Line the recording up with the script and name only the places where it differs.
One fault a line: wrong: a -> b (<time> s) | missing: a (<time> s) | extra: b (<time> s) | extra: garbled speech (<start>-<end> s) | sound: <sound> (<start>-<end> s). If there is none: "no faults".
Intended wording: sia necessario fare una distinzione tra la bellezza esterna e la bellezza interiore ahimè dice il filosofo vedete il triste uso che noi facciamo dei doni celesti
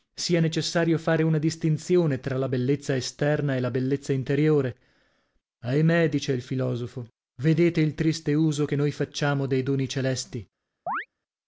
sound: chirp (10.9-11.1 s)